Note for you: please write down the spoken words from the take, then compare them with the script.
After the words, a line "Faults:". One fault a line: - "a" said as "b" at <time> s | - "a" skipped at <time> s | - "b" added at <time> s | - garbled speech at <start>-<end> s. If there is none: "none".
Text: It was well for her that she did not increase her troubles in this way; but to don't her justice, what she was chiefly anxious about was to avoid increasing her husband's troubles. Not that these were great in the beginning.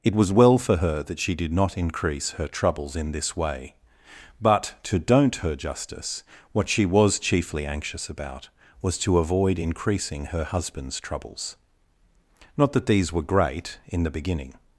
It was well for her that she did not increase her troubles in this way; but to don't her justice, what she was chiefly anxious about was to avoid increasing her husband's troubles. Not that these were great in the beginning.
Faults:
none